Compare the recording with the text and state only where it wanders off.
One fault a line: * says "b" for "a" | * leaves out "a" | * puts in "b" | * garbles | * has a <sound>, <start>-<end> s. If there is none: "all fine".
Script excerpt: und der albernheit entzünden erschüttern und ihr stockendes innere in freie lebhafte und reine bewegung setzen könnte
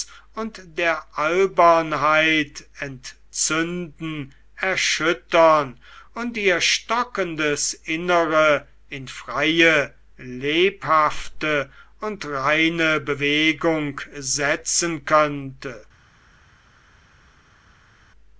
all fine